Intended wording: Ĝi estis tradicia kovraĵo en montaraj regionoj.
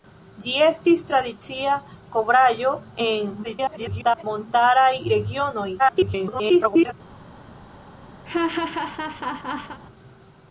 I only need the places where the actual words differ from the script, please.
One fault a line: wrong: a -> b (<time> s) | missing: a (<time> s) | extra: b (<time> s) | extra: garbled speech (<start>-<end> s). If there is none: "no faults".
extra: garbled speech (3.4-4.2 s)
extra: garbled speech (5.8-6.9 s)